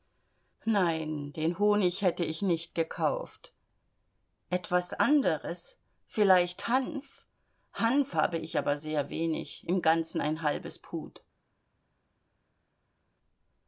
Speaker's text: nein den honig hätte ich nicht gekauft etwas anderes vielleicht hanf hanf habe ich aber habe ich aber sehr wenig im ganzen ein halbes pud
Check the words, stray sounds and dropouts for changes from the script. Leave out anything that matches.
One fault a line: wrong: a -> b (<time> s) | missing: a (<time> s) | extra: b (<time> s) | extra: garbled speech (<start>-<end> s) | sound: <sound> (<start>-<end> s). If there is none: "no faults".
missing: habe ich aber (8.8 s)